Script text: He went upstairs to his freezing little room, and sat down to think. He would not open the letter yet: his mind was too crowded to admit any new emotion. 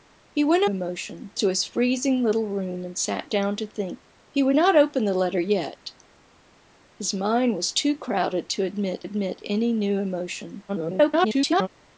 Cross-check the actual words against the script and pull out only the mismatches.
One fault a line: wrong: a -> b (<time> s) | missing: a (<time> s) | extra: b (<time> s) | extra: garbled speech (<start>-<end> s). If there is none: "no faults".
wrong: upstairs -> emotion (0.7 s)
extra: admit (9.0 s)
extra: garbled speech (10.7-11.7 s)